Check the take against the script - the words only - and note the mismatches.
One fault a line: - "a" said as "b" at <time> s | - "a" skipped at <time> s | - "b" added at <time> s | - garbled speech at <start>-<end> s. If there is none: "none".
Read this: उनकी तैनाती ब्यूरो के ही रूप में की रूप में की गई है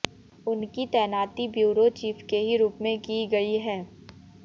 - "चीफ" added at 2.0 s
- "रूप में की" skipped at 3.2 s